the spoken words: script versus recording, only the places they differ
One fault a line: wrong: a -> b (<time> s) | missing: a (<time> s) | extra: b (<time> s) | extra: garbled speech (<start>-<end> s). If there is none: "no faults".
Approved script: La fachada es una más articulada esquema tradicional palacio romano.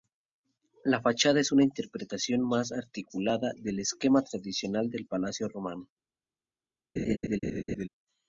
extra: interpretación (1.6 s)
extra: del (3.5 s)
extra: del (4.9 s)